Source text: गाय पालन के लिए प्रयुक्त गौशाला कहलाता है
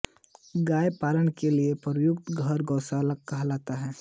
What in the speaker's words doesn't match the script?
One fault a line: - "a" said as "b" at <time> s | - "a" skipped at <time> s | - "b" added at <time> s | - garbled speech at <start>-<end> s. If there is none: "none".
- "घर" added at 2.3 s